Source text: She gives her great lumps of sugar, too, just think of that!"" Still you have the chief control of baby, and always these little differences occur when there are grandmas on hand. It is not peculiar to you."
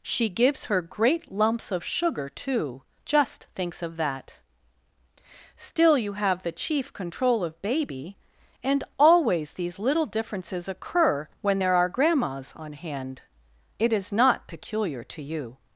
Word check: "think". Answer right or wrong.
wrong